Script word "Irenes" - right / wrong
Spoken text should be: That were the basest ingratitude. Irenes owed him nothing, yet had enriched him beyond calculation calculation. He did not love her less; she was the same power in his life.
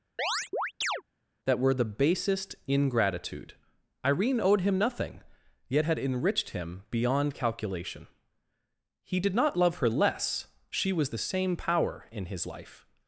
wrong